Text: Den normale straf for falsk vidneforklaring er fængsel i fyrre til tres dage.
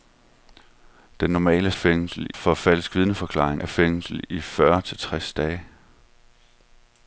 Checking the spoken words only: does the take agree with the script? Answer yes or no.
no